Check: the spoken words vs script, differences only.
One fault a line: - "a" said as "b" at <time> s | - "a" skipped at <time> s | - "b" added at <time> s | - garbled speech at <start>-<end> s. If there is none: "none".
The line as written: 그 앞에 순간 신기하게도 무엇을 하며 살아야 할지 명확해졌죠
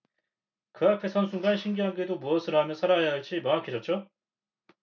- "선" added at 1.1 s